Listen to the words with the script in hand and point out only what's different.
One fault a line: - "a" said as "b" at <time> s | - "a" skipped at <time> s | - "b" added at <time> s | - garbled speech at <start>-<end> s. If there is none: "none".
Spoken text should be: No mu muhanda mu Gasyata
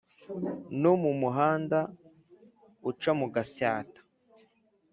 - "uca" added at 2.9 s